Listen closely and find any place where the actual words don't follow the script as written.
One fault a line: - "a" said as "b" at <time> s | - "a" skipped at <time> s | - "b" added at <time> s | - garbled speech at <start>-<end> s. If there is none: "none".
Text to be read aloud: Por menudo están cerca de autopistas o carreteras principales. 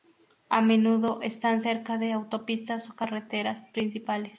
- "Por" said as "A" at 0.5 s